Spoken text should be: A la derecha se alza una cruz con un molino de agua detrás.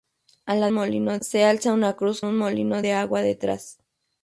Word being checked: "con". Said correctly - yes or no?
no